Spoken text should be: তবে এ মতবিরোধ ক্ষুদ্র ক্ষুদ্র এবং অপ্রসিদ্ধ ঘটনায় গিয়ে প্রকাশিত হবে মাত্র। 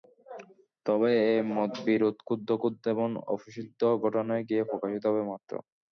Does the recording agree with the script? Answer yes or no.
yes